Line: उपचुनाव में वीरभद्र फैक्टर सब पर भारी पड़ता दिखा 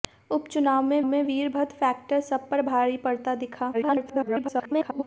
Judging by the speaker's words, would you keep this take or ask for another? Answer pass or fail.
fail